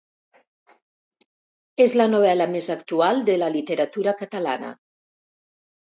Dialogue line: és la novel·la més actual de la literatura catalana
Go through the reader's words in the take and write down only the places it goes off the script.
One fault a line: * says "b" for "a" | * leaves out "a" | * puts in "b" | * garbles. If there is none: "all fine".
all fine